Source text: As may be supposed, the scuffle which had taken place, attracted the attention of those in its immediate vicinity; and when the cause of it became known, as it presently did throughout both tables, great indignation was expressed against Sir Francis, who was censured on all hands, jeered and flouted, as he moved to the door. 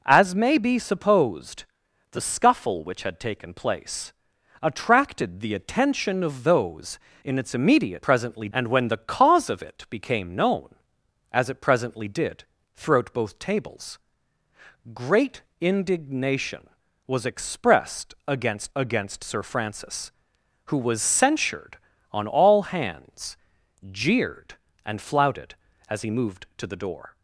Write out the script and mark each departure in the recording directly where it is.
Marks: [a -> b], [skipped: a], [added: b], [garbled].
As may be supposed, the scuffle which had taken place, attracted the attention of those in its immediate [vicinity; -> presently] and when the cause of it became known, as it presently did throughout both tables, great indignation was expressed against [added: against] Sir Francis, who was censured on all hands, jeered and flouted, as he moved to the door.